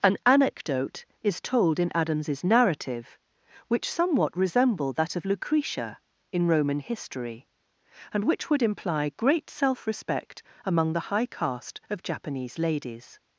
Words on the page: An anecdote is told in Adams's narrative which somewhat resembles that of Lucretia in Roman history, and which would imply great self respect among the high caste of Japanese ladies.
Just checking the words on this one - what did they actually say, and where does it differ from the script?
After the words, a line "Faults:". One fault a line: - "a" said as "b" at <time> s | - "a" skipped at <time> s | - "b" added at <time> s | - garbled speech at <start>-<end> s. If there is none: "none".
An anecdote is told in Adams's narrative which somewhat resemble that of Lucretia in Roman history, and which would imply great self respect among the high caste of Japanese ladies.
Faults:
- "resembles" said as "resemble" at 4.3 s